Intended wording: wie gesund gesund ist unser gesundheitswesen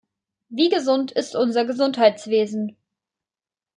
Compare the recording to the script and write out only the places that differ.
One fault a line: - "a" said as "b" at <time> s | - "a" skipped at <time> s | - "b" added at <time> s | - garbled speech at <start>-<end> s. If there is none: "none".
- "gesund" skipped at 1.1 s